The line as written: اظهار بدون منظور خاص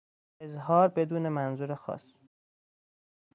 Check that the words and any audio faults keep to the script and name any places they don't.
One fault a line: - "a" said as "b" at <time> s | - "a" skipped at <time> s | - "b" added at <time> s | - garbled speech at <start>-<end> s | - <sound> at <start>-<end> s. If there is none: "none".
none